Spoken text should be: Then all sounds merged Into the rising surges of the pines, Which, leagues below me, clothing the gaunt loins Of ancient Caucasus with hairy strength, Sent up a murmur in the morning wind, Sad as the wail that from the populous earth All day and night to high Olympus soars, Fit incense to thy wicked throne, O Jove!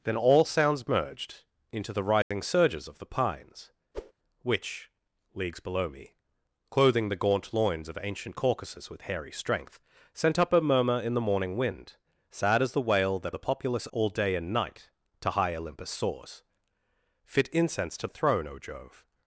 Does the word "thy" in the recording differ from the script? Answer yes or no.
yes